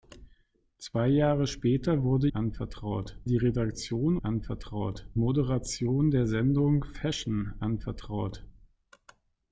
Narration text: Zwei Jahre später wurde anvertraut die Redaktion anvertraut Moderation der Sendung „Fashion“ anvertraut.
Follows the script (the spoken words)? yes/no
yes